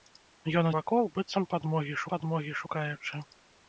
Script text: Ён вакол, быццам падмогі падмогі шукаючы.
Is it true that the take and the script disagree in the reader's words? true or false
false